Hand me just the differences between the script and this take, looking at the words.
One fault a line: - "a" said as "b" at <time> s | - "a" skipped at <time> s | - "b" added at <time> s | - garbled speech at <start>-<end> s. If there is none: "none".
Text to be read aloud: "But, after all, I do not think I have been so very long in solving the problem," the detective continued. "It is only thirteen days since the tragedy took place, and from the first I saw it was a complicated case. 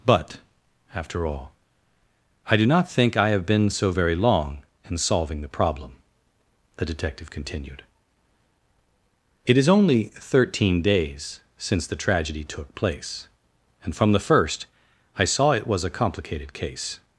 none